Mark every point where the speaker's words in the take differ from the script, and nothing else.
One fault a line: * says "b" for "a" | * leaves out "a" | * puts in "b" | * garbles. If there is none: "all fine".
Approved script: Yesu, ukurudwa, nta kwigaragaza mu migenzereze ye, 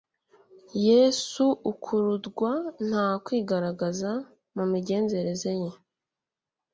all fine